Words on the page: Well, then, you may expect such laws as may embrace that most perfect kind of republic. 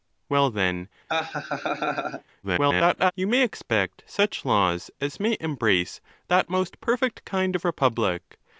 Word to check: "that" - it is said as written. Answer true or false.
true